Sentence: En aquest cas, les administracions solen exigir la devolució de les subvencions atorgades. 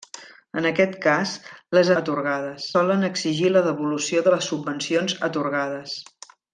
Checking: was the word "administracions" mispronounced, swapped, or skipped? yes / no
yes